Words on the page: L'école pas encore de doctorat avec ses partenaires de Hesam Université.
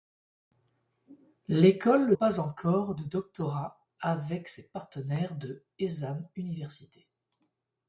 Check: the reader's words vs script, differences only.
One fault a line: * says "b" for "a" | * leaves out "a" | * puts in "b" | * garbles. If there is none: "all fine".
all fine